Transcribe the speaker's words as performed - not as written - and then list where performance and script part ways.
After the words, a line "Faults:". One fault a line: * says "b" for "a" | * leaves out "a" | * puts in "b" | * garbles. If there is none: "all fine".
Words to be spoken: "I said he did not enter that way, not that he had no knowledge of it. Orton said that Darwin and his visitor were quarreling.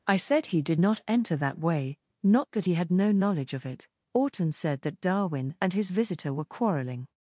"I said he did not enter that way, not that he had no knowledge of it. Orton said that Darwin and his visitor were quarreling.
Faults:
all fine